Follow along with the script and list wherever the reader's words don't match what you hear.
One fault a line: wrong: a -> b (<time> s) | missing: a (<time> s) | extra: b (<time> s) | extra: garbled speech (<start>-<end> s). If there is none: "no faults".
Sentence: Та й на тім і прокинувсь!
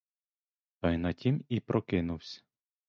no faults